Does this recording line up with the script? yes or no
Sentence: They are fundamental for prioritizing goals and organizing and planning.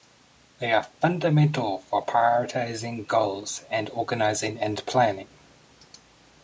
yes